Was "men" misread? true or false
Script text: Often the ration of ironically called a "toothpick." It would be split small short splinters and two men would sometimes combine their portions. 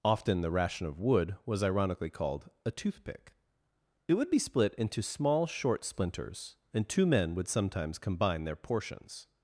false